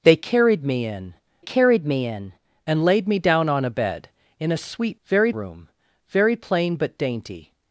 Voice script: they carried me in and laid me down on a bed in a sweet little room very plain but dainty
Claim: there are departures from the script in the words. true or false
true